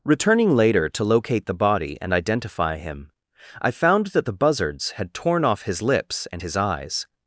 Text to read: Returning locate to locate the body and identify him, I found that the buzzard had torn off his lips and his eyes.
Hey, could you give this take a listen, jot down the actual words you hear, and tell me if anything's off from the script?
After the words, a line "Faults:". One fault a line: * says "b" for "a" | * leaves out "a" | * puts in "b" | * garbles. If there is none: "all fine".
Returning later to locate the body and identify him, I found that the buzzards had torn off his lips and his eyes.
Faults:
* says "later" for "locate"
* says "buzzards" for "buzzard"